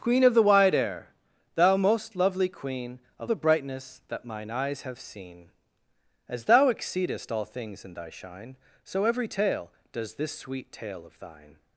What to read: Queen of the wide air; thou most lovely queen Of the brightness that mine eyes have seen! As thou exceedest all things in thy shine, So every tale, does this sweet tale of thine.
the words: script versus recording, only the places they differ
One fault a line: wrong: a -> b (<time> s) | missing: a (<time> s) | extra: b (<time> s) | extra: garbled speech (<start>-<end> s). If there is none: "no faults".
no faults